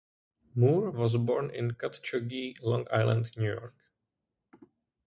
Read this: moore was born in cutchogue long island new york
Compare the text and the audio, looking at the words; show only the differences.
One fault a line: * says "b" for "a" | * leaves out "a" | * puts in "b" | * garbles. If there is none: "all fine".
all fine